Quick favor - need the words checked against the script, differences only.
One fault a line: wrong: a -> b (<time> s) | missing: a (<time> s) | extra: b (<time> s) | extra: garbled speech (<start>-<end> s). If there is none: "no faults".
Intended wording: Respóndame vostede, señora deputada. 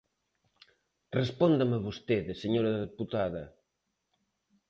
no faults